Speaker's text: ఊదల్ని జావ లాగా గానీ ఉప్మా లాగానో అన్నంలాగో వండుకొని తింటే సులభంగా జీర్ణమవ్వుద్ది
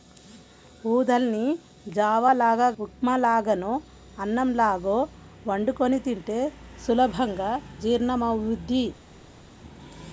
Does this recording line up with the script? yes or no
no